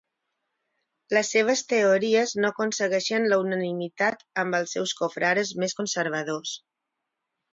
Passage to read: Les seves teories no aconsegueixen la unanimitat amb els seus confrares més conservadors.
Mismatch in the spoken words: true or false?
false